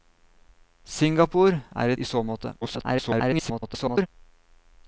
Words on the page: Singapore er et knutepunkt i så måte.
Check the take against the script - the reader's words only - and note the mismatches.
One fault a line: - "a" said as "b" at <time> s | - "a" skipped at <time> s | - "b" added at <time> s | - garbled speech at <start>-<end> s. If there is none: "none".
- "et knutepunkt" skipped at 1.9 s
- garbled speech at 2.6-4.1 s